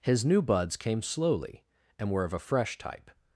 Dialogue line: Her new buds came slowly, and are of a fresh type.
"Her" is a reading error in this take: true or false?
true